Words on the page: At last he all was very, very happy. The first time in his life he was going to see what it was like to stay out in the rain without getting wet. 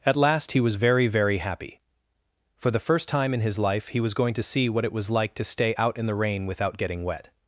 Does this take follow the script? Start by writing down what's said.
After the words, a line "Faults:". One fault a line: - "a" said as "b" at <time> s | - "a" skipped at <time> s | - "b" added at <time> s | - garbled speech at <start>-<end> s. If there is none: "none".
At last he was very, very happy. For the first time in his life he was going to see what it was like to stay out in the rain without getting wet.
Faults:
- "all" skipped at 0.6 s
- "For" added at 2.6 s